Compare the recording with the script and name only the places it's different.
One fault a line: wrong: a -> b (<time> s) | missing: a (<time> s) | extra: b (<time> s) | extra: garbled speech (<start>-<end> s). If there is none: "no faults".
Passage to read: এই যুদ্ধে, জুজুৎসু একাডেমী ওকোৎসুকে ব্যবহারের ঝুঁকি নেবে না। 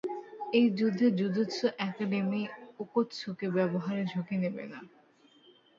no faults